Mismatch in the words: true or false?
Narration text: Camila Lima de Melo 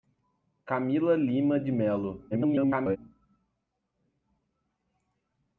true